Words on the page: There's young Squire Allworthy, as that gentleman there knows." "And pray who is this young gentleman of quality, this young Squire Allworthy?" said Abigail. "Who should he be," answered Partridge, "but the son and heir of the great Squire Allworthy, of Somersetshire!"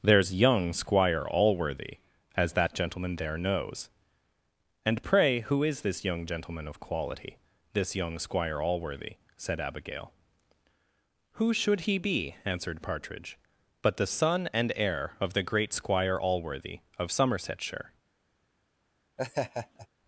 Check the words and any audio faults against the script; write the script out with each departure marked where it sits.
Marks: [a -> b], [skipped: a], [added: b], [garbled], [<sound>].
There's young Squire Allworthy, as that gentleman there knows." "And pray who is this young gentleman of quality, this young Squire Allworthy?" said Abigail. "Who should he be," answered Partridge, "but the son and heir of the great Squire Allworthy, of Somersetshire!" [laugh]